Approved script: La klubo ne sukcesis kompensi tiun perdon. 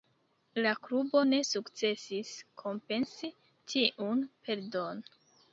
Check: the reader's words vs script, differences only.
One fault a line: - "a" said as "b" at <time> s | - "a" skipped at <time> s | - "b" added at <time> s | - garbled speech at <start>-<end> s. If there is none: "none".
none